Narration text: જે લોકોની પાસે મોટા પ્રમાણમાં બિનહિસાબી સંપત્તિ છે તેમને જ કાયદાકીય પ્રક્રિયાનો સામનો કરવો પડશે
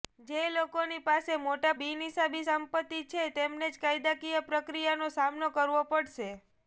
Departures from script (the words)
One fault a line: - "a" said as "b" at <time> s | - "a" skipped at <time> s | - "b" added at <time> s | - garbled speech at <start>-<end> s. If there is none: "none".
- "પ્રમાણમાં" skipped at 1.7 s